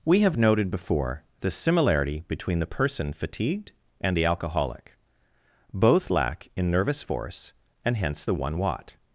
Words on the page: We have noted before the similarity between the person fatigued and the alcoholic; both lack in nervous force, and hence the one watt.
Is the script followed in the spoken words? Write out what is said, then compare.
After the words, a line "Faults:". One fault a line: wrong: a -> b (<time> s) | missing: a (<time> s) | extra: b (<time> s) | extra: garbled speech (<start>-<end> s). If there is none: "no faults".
We have noted before the similarity between the person fatigued and the alcoholic; both lack in nervous force, and hence the one watt.
Faults:
no faults